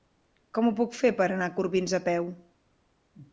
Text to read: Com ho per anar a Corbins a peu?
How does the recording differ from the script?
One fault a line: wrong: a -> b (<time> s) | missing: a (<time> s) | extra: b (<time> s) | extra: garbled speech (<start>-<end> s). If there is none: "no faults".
extra: puc fer (0.8 s)